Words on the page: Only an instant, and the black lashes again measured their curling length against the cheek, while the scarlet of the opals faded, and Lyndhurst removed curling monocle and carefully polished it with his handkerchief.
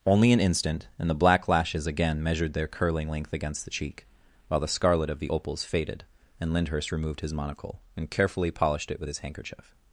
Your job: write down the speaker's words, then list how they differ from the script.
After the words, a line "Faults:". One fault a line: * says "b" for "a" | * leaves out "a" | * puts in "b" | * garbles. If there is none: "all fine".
Only an instant, and the black lashes again measured their curling length against the cheek, while the scarlet of the opals faded, and Lyndhurst removed his monocle and carefully polished it with his handkerchief.
Faults:
* says "his" for "curling"